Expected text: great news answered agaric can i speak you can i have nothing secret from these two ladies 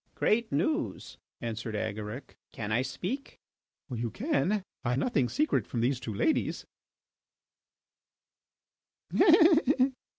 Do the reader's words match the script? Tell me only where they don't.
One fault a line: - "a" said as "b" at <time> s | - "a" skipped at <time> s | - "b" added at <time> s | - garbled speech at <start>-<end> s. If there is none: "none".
- "have" skipped at 4.9 s